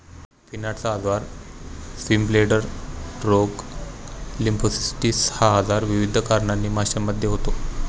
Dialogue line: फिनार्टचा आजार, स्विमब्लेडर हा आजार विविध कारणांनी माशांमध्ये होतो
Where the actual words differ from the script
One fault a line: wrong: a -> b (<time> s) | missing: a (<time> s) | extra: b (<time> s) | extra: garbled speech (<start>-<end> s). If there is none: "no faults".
extra: रोग लिम्फोसिस्टिस (3.2 s)